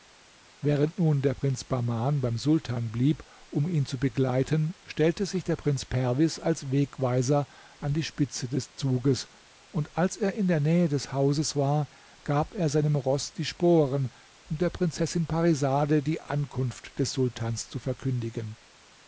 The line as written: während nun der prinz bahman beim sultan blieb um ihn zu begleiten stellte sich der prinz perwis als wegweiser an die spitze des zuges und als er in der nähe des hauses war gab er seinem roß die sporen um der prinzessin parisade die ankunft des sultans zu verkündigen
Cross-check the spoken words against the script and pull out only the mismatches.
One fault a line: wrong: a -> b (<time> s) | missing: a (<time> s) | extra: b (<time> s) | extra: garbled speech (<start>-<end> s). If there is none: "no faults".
no faults